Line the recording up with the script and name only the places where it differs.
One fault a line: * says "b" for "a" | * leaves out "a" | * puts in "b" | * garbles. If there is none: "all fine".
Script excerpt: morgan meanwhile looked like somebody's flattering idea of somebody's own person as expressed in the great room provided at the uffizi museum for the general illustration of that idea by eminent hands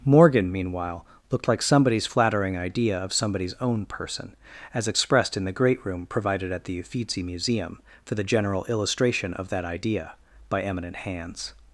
all fine